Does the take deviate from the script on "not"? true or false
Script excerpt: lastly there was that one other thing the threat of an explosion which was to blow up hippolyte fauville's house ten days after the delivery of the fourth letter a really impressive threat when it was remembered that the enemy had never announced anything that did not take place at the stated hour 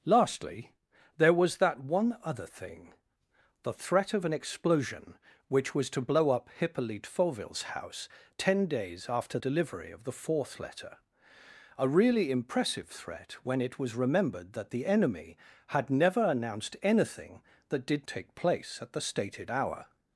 true